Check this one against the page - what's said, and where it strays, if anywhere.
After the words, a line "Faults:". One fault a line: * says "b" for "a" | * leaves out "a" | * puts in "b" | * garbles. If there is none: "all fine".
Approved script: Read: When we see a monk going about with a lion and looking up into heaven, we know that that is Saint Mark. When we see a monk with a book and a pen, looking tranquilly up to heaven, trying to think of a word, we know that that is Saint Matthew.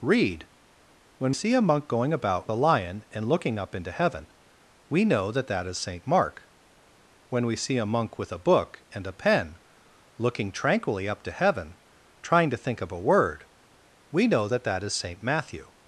Read: When see a monk going about a lion and looking up into heaven, we know that that is Saint Mark. When we see a monk with a book and a pen, looking tranquilly up to heaven, trying to think of a word, we know that that is Saint Matthew.
Faults:
* leaves out "we"
* leaves out "with"